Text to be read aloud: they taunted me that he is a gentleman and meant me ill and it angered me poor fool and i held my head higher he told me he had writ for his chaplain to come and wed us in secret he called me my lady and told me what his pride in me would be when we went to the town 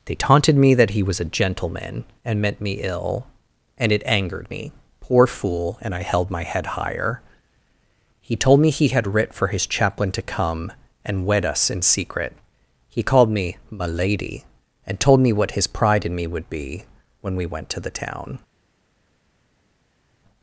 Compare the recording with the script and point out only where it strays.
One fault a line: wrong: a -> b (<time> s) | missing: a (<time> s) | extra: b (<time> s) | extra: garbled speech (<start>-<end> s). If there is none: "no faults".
wrong: is -> was (1.0 s)